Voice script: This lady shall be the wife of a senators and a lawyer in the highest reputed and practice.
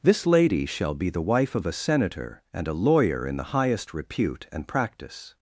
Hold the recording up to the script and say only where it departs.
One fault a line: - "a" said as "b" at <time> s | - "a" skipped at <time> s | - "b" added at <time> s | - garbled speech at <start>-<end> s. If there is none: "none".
- "senators" said as "senator" at 1.7 s
- "reputed" said as "repute" at 3.9 s